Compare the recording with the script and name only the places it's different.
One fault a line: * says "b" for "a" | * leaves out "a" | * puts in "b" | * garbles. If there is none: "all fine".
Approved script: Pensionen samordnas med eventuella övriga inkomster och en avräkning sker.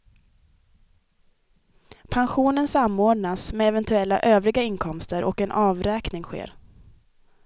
all fine